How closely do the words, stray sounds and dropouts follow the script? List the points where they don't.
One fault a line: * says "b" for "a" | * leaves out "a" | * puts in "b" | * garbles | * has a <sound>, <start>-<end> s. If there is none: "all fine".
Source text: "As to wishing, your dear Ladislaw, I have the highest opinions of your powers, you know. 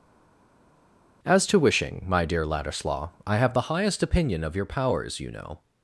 * says "my" for "your"
* says "opinion" for "opinions"